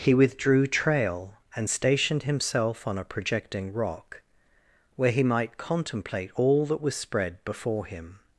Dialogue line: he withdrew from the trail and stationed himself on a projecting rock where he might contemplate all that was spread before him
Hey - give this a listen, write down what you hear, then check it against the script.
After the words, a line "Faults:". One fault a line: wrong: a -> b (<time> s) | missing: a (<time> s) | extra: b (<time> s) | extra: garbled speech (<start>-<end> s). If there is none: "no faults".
he withdrew trail and stationed himself on a projecting rock where he might contemplate all that was spread before him
Faults:
missing: from the (0.7 s)